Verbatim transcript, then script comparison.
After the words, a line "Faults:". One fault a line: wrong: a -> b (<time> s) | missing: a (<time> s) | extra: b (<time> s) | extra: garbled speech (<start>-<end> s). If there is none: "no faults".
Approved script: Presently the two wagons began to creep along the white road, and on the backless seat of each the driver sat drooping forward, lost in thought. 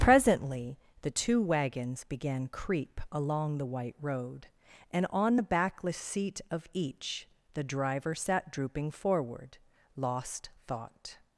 Presently the two wagons began creep along the white road, and on the backless seat of each the driver sat drooping forward, lost thought.
Faults:
missing: to (2.5 s)
missing: in (10.5 s)